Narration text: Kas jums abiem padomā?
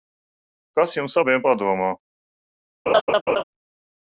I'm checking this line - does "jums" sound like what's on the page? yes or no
yes